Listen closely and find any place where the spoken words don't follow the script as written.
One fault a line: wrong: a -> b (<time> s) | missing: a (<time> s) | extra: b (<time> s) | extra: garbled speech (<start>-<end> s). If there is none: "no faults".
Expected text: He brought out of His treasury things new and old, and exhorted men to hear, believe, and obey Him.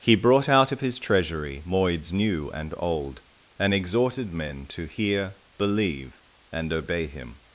wrong: things -> moids (1.6 s)